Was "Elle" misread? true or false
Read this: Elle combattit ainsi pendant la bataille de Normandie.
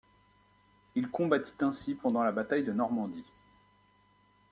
true